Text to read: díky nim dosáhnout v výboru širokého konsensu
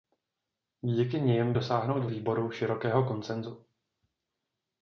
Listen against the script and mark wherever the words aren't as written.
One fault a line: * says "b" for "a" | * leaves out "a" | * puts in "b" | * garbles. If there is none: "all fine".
all fine